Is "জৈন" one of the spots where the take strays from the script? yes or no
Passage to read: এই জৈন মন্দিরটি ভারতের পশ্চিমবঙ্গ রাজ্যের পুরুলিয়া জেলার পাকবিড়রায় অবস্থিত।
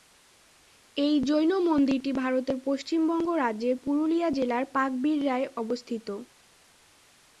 no